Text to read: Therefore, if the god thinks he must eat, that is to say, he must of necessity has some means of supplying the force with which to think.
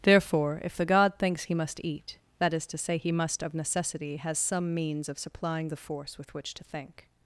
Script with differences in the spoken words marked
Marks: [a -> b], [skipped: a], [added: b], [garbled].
Therefore, if the god thinks he must eat, that is to say, he must of necessity has some means of supplying the force with which to think.